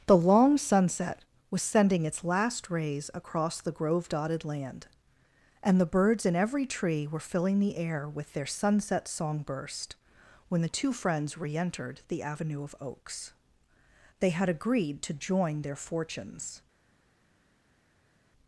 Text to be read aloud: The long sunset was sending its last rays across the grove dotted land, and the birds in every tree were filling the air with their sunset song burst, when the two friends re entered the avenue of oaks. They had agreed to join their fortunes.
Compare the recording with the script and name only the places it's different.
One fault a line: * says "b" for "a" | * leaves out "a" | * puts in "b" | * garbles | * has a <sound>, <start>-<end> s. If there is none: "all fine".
all fine